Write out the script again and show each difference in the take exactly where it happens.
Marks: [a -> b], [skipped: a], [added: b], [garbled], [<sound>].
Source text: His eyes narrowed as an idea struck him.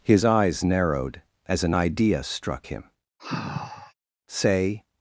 His eyes narrowed as an idea struck him. [sigh] [added: Say]